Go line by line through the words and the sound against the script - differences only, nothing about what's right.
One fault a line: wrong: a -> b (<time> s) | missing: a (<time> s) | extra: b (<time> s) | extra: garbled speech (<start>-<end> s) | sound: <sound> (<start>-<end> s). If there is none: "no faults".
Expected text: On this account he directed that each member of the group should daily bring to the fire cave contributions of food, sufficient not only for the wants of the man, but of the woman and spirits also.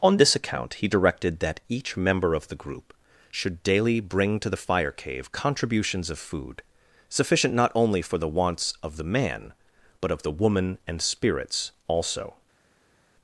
no faults